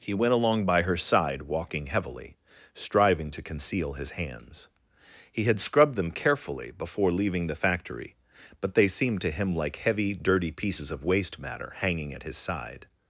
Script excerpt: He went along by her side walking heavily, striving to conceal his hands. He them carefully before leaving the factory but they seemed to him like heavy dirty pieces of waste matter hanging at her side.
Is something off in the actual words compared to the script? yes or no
yes